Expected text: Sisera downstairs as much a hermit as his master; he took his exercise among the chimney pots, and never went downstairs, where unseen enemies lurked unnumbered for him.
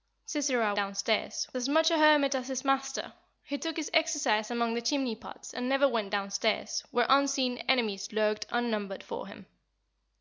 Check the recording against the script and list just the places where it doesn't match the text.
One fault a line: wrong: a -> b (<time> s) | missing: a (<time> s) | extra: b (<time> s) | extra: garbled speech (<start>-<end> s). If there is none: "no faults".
no faults